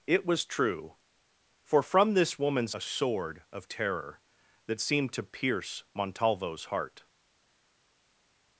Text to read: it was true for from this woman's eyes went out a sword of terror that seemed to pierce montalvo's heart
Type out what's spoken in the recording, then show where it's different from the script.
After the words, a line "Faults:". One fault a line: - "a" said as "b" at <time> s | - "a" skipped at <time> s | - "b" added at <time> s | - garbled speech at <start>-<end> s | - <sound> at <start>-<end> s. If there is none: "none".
it was true for from this woman's a sword of terror that seemed to pierce montalvo's heart
Faults:
- "eyes went out" skipped at 2.8 s